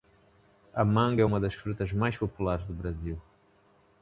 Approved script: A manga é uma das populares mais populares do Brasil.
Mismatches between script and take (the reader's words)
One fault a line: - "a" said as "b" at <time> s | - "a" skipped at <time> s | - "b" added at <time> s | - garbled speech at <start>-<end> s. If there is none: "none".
- "populares" said as "frutas" at 1.5 s